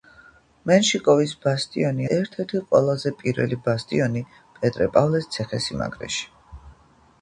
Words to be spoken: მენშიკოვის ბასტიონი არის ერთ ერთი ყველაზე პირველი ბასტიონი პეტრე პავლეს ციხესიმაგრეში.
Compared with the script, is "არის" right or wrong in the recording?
wrong